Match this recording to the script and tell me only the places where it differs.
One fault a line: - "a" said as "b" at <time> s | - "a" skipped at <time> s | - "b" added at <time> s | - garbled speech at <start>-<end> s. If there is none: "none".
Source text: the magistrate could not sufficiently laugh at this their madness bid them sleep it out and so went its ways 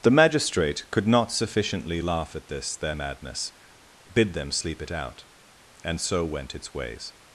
none